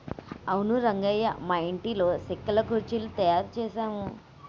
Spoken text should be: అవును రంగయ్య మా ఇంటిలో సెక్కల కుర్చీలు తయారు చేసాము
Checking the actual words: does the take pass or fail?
pass